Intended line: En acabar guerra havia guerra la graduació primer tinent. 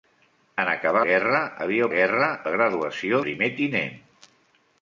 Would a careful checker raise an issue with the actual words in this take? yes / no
no